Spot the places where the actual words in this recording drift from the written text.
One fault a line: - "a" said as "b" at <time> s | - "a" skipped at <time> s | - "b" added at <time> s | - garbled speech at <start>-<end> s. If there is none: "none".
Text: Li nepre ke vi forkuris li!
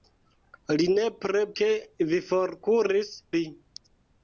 none